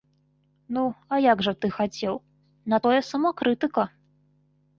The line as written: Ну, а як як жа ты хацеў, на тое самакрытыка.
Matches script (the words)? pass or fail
fail